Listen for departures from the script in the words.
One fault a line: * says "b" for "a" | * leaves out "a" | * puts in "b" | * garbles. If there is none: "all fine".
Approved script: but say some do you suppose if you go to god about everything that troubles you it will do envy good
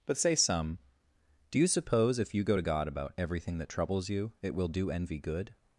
all fine